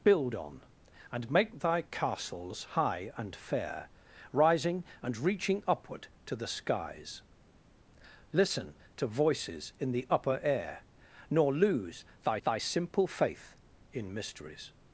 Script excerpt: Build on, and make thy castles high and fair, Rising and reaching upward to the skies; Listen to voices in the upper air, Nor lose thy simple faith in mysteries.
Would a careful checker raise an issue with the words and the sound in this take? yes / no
yes